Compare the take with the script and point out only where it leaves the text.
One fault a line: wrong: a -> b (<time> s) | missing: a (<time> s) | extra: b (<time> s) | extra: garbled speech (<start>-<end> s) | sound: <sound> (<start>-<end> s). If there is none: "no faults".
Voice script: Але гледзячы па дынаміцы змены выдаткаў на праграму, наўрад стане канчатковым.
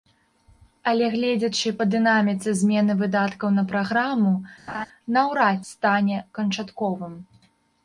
sound: laugh (4.7-4.9 s)